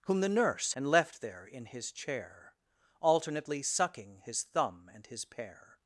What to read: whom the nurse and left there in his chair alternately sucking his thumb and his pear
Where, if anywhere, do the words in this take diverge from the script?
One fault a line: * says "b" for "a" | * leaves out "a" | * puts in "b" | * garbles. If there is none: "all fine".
all fine